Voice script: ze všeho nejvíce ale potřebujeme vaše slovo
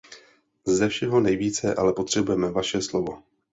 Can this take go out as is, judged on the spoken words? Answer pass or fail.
pass